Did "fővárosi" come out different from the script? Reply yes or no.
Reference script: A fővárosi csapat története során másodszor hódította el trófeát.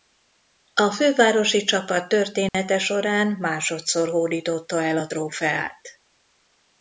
no